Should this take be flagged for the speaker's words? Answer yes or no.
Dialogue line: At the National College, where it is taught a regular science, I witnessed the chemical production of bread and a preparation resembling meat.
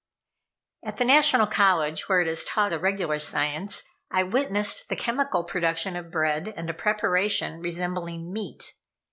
no